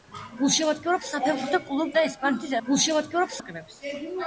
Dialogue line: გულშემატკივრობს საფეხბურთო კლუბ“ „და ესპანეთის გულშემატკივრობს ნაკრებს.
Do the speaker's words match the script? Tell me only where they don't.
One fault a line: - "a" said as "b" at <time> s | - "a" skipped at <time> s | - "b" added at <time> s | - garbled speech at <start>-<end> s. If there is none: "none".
none